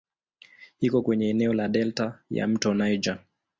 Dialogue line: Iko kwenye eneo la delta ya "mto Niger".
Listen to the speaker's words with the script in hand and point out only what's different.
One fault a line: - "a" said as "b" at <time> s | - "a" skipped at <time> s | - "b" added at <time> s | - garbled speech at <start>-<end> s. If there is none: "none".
none